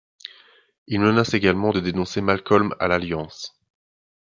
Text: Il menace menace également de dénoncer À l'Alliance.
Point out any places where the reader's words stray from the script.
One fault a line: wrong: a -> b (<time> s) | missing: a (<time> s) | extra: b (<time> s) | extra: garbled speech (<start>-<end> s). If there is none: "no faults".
missing: menace (1.4 s)
extra: Malcolm (2.2 s)